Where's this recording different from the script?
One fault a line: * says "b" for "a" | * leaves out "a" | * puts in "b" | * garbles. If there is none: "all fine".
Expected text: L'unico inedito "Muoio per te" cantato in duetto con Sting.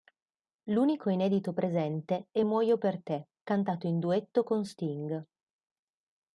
* puts in "presente è"